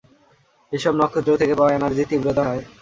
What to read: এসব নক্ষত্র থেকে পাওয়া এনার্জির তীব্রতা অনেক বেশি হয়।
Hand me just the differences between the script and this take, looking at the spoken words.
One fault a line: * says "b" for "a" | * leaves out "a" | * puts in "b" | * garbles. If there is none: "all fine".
* leaves out "অনেক বেশি"